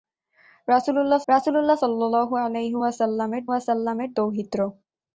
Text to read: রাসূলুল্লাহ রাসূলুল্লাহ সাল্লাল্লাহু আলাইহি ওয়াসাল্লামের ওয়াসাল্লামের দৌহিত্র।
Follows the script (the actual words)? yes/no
yes